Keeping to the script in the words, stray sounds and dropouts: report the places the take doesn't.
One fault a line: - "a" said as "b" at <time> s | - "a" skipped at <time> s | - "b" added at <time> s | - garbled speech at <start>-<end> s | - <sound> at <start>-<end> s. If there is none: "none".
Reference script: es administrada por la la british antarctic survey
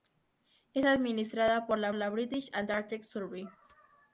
none